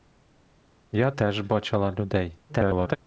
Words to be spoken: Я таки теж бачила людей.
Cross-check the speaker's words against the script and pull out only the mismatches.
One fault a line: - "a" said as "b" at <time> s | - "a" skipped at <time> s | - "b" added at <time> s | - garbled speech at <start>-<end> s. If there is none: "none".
- "таки" skipped at 1.1 s
- garbled speech at 2.5-3.0 s